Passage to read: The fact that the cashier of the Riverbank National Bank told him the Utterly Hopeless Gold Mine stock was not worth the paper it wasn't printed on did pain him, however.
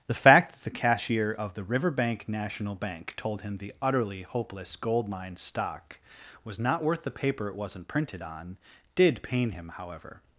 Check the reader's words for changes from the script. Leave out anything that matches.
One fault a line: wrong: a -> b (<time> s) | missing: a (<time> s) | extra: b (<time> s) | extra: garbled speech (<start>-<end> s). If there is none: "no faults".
no faults